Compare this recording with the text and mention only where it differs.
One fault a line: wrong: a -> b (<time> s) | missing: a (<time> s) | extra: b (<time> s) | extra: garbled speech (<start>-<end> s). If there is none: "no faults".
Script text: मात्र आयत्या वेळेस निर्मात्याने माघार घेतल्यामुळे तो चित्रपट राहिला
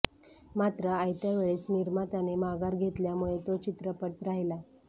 no faults